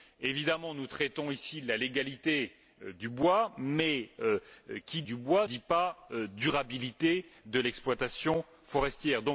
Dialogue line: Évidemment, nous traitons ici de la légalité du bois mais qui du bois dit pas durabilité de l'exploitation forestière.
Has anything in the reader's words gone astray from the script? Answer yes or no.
no